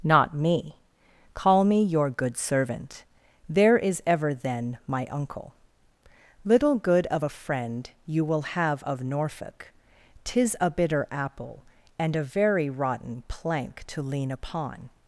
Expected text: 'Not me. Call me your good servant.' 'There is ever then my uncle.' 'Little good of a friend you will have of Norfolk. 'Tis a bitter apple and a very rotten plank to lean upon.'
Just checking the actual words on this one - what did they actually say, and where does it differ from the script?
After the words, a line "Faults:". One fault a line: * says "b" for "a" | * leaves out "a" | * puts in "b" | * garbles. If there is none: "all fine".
'Not me. Call me your good servant.' 'There is ever then my uncle.' 'Little good of a friend you will have of Norfolk. 'Tis a bitter apple and a very rotten plank to lean upon.'
Faults:
all fine